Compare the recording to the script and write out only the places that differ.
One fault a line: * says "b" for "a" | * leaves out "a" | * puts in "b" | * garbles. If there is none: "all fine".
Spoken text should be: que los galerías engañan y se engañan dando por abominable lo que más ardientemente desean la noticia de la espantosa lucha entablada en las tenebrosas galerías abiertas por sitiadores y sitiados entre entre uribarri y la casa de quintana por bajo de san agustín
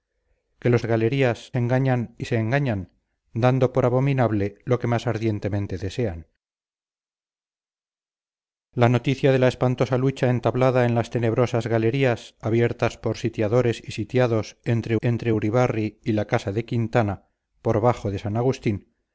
all fine